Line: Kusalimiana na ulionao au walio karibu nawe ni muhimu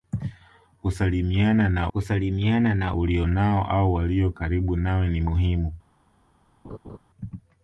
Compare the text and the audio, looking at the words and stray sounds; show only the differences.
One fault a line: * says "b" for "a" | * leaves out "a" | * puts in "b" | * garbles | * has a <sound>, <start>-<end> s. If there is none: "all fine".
* puts in "kusalimiana na"
* has a laugh, 6.6-7.0 s